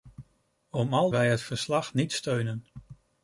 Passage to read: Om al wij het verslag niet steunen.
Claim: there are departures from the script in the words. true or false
false